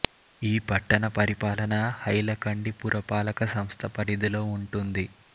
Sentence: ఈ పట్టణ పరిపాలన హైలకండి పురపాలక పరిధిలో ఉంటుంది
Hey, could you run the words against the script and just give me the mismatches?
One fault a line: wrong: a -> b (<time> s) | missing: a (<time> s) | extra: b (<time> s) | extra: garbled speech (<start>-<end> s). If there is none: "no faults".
extra: సంస్థ (3.5 s)